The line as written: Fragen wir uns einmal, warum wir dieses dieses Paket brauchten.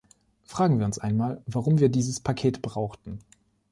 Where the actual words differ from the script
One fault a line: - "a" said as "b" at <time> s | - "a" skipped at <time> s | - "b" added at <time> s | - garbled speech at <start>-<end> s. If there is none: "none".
- "dieses" skipped at 2.2 s